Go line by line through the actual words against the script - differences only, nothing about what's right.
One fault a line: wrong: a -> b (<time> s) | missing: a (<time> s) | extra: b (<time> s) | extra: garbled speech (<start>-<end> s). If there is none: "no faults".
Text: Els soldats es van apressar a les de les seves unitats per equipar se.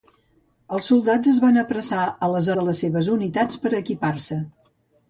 no faults